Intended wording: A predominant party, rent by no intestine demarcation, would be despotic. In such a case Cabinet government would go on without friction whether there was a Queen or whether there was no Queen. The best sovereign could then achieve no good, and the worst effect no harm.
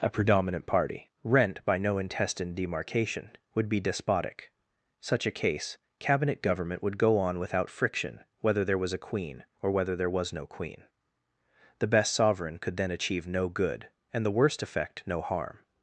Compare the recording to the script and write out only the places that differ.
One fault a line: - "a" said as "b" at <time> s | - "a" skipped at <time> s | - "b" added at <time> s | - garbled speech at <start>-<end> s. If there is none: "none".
- "In" skipped at 4.5 s